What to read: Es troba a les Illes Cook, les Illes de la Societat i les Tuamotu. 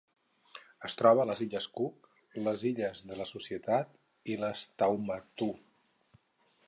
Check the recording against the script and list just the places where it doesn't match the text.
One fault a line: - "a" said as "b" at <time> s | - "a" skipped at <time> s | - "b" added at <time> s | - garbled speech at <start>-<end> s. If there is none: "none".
none